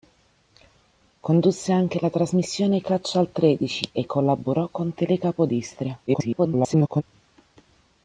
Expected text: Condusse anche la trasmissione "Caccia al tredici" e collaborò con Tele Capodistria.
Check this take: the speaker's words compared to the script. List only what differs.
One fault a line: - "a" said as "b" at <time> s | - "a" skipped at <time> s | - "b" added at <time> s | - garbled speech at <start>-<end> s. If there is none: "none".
- garbled speech at 6.1-7.0 s